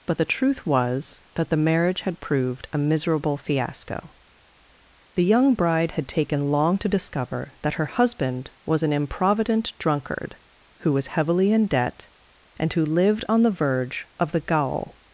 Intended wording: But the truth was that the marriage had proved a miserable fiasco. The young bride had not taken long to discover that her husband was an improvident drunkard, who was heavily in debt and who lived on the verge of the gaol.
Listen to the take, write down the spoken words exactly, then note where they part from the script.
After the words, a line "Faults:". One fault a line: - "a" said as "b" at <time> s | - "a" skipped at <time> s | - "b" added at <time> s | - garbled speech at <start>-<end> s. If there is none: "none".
But the truth was that the marriage had proved a miserable fiasco. The young bride had taken long to discover that her husband was an improvident drunkard, who was heavily in debt and who lived on the verge of the gaol.
Faults:
- "not" skipped at 6.1 s